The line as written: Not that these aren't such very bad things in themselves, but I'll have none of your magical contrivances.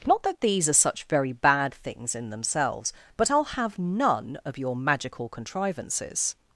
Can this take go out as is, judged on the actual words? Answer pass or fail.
fail